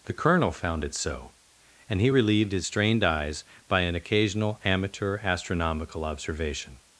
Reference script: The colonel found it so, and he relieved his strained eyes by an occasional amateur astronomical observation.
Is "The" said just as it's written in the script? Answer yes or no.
yes